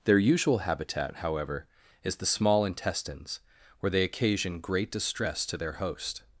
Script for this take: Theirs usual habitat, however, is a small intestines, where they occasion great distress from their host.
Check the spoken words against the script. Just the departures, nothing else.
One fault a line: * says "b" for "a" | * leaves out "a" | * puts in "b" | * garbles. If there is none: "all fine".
* says "Their" for "Theirs"
* says "the" for "a"
* says "to" for "from"